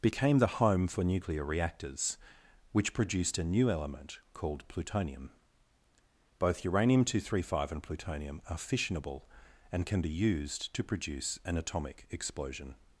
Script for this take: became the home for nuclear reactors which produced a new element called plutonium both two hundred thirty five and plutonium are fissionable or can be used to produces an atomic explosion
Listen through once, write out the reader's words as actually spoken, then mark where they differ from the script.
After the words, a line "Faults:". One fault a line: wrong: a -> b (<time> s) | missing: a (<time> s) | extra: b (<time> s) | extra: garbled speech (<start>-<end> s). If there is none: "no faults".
became the home for nuclear reactors which produced a new element called plutonium both uranium two hundred thirty five and plutonium are fissionable and can be used to produce an atomic explosion
Faults:
extra: uranium (6.7 s)
wrong: or -> and (9.7 s)
wrong: produces -> produce (10.8 s)